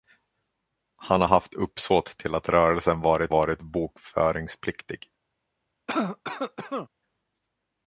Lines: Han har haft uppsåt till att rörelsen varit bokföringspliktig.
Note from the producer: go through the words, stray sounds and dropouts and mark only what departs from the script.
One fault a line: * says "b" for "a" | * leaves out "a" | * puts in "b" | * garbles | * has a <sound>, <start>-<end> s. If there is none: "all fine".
* puts in "varit"
* has a cough, 5.9-6.9 s